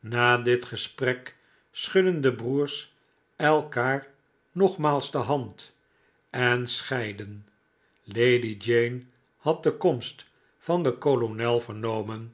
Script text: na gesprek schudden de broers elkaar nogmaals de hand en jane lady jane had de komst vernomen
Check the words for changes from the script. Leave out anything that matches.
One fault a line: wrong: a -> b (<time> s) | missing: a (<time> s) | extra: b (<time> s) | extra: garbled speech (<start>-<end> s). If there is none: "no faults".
extra: dit (0.4 s)
wrong: jane -> scheidden (6.7 s)
extra: van den kolonel (10.6 s)